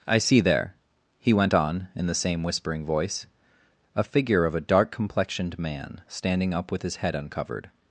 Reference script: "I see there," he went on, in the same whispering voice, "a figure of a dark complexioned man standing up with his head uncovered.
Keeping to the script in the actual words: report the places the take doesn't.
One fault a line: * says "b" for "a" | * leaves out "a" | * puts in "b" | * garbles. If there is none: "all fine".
all fine